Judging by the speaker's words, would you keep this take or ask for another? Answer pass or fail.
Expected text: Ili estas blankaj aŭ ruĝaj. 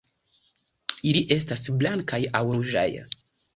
pass